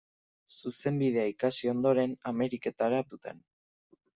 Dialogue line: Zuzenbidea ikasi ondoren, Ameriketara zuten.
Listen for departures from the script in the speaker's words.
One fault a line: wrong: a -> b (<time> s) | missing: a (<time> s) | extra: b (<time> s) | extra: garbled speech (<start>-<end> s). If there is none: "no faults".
no faults